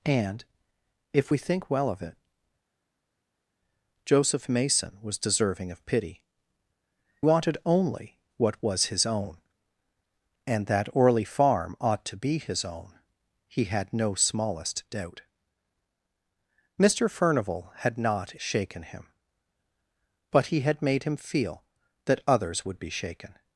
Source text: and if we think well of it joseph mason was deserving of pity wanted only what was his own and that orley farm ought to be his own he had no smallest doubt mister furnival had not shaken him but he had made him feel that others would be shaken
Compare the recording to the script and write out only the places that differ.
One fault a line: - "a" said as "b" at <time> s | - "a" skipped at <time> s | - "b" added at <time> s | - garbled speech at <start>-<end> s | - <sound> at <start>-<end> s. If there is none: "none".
none